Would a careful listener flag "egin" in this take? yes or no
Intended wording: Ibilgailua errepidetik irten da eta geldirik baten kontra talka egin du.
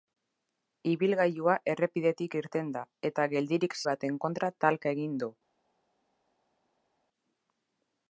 no